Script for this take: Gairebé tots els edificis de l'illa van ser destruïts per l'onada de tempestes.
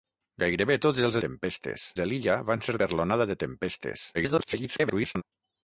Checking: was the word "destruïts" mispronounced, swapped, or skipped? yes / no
yes